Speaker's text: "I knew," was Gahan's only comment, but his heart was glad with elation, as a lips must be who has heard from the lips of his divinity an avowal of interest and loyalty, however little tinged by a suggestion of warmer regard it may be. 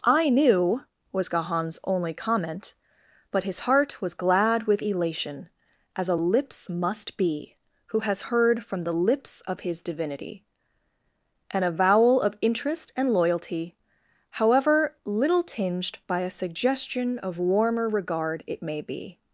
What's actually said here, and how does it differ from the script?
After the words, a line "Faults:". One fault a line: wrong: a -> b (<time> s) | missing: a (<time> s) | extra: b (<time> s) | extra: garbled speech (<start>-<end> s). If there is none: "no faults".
"I knew," was Gahan's only comment, but his heart was glad with elation, as a lips must be who has heard from the lips of his divinity an avowal of interest and loyalty, however little tinged by a suggestion of warmer regard it may be.
Faults:
no faults